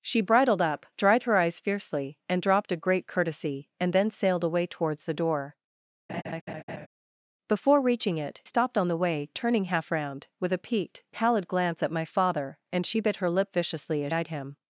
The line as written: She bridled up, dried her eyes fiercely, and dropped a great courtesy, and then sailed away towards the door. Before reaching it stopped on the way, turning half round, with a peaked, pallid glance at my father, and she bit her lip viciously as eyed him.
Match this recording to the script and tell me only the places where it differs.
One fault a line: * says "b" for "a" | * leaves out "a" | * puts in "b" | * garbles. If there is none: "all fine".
all fine